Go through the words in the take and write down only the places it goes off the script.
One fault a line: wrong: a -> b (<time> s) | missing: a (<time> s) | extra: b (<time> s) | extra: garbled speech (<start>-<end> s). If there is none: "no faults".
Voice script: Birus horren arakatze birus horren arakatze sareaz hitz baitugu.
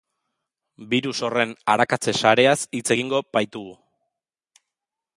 missing: birus horren arakatze (2.1 s)
extra: egingo (3.0 s)